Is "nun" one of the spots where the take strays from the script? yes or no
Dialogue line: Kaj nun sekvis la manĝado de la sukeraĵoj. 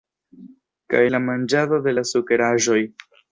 yes